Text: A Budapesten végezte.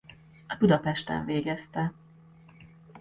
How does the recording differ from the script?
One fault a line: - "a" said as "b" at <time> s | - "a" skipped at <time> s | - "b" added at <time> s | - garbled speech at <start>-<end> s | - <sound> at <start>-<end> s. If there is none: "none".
none